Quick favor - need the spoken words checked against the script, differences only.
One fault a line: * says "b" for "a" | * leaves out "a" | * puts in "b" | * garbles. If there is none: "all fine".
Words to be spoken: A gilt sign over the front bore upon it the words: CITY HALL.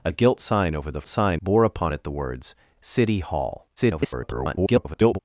* says "sign" for "front"
* garbles